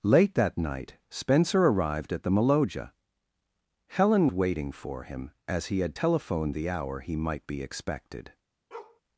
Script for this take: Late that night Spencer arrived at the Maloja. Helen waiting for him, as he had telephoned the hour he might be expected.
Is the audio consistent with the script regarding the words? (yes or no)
yes